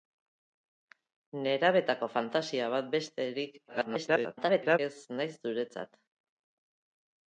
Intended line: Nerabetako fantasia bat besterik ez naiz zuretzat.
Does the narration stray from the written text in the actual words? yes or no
yes